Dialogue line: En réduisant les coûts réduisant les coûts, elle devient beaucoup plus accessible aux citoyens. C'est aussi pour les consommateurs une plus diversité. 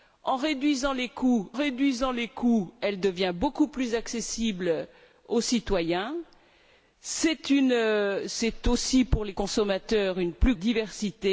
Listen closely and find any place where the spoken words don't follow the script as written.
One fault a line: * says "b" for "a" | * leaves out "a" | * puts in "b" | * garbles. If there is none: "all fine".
all fine